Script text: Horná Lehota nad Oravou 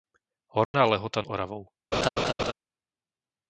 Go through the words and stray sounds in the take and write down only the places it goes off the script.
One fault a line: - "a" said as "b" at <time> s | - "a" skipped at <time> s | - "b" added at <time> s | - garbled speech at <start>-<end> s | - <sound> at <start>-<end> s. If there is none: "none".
- dropout at 0.6-0.7 s
- "nad" skipped at 1.2 s
- laugh at 1.9-2.5 s